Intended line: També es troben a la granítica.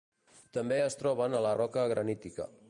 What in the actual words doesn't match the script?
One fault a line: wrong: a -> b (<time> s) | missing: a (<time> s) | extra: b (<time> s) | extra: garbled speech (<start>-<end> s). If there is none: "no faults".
extra: roca (1.6 s)